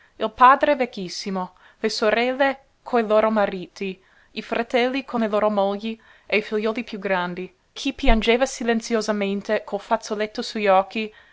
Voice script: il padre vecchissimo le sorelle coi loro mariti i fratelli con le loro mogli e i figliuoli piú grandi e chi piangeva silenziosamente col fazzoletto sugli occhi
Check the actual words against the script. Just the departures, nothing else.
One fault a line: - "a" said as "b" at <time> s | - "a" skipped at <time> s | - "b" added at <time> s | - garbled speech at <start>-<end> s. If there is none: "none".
- "e" skipped at 7.5 s